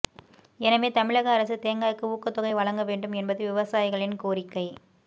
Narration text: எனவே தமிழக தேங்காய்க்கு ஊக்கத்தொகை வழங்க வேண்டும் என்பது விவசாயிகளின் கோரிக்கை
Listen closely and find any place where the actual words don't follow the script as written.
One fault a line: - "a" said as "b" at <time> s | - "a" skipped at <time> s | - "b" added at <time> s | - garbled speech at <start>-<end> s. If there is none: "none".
- "அரசு" added at 1.3 s